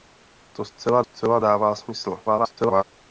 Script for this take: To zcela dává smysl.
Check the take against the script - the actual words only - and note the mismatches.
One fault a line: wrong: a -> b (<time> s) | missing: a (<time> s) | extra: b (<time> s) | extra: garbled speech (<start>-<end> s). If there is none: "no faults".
extra: zcela (1.0 s)
extra: garbled speech (2.2-2.8 s)